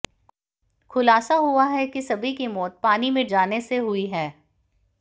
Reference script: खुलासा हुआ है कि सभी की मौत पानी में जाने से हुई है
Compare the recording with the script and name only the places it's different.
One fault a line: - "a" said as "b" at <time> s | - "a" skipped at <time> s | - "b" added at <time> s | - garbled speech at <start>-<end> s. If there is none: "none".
none